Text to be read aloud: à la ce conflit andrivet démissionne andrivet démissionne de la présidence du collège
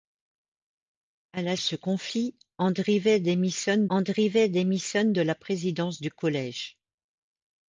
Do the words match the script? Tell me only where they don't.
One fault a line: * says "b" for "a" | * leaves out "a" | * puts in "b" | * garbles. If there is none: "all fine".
all fine